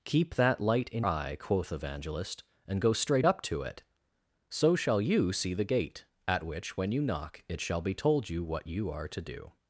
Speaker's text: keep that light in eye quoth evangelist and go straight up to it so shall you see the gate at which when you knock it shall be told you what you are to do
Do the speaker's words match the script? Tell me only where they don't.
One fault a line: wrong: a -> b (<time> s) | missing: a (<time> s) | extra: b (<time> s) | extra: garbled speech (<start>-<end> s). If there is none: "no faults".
no faults